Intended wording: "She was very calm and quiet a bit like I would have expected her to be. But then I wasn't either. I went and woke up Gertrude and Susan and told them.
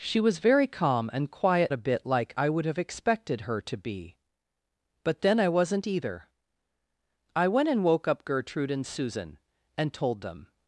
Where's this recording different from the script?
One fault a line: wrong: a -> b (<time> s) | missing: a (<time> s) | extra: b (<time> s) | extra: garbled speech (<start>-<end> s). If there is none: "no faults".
no faults